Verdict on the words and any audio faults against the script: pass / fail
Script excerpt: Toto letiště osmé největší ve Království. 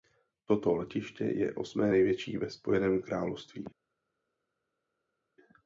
fail